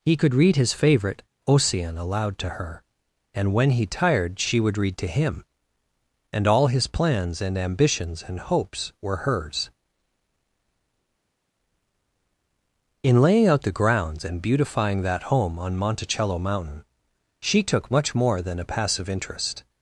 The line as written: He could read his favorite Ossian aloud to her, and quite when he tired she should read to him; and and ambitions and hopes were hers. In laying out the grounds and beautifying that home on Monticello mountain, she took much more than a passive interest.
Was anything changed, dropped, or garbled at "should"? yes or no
yes